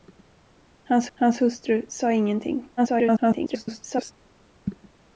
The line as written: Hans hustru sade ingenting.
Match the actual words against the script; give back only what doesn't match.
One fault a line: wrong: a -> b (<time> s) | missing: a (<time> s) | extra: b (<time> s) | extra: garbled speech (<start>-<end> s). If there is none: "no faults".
extra: hans (1.1 s)
extra: garbled speech (2.8-4.1 s)